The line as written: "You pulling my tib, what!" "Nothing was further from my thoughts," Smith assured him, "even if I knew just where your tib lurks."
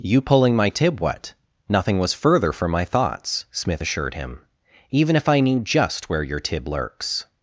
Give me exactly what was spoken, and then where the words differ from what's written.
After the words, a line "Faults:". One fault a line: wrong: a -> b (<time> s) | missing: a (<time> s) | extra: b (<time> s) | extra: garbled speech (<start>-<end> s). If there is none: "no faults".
"You pulling my tib, what!" "Nothing was further from my thoughts," Smith assured him, "even if I knew just where your tib lurks."
Faults:
no faults